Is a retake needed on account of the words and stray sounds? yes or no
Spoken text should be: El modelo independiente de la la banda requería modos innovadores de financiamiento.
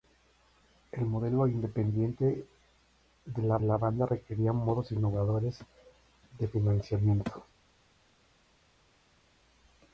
no